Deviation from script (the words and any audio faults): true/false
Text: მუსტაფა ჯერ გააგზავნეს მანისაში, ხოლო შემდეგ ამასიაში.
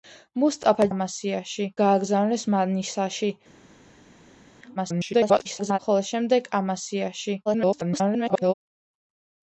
true